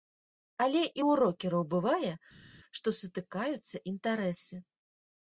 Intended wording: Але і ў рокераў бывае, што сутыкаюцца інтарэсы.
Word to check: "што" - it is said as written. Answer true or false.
true